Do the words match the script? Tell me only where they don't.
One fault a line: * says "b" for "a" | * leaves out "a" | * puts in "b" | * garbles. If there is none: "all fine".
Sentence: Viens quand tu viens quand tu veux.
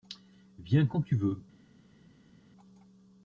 * leaves out "viens quand tu"